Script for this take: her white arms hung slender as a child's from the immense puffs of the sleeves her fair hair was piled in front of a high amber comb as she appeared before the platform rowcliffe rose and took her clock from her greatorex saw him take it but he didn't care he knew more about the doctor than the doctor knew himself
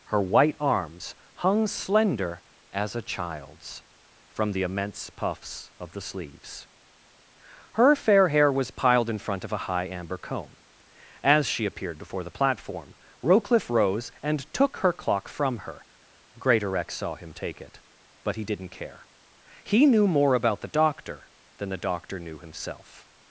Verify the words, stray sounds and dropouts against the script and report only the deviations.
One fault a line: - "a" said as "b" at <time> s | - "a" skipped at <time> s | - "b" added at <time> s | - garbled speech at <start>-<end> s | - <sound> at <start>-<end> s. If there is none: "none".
none